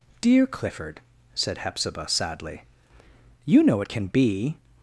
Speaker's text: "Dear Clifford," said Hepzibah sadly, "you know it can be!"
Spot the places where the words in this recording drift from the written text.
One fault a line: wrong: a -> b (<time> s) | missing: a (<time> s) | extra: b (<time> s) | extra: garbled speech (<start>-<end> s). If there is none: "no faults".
no faults